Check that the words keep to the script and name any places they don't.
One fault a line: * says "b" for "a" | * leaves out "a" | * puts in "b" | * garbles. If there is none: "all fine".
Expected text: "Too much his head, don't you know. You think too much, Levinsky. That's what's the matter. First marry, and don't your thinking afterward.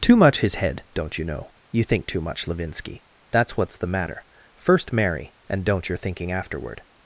all fine